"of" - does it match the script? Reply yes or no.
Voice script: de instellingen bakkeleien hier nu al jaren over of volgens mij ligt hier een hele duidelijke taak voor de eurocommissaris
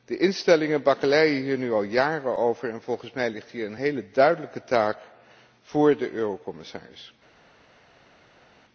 no